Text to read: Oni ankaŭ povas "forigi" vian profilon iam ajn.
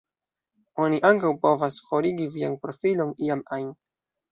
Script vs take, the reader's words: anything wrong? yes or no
no